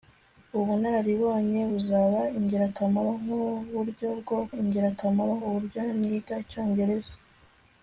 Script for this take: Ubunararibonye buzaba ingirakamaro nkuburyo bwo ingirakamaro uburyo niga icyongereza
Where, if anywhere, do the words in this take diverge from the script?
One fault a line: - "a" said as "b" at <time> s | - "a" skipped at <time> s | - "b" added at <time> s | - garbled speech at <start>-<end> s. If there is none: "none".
none